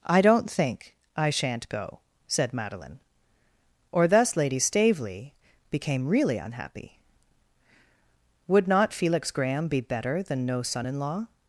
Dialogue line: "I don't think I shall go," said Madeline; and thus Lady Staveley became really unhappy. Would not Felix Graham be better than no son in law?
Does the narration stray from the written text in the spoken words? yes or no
yes